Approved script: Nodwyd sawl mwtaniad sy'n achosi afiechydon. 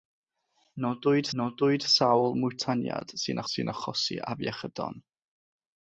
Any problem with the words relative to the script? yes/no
yes